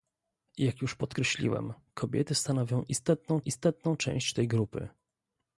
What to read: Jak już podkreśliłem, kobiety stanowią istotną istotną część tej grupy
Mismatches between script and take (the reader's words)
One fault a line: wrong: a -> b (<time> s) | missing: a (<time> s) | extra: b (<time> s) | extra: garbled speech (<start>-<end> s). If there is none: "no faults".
no faults